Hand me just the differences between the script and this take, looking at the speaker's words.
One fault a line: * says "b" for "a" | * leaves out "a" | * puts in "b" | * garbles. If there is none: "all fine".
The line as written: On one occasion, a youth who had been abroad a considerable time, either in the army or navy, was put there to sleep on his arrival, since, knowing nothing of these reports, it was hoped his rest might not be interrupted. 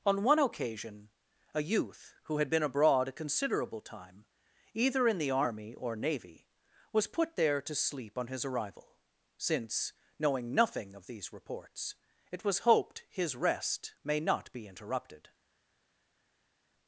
* says "may" for "might"